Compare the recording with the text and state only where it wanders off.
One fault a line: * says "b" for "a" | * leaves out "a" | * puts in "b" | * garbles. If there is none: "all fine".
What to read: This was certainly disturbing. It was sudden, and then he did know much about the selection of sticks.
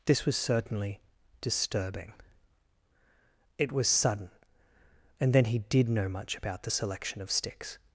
all fine